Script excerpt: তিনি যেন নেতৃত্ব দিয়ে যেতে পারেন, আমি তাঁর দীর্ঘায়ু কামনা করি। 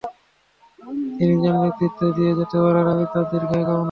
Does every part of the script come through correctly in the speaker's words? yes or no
yes